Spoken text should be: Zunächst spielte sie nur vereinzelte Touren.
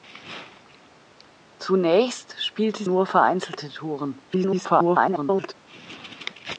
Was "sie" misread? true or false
true